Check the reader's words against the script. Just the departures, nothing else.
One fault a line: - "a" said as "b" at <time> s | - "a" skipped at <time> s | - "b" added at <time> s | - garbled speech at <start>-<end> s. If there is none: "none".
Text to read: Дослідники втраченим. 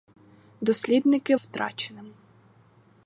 none